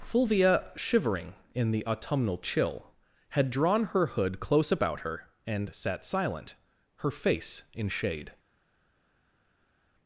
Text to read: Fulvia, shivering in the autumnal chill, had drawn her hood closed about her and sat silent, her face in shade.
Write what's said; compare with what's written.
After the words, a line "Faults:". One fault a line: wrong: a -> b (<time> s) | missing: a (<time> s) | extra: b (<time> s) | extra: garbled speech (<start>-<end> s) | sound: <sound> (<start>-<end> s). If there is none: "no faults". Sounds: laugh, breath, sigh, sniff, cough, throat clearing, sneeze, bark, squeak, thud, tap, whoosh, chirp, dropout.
Fulvia, shivering in the autumnal chill, had drawn her hood close about her and sat silent, her face in shade.
Faults:
wrong: closed -> close (4.4 s)